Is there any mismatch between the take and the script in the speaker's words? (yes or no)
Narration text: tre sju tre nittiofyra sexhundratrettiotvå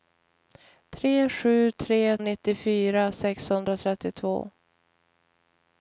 no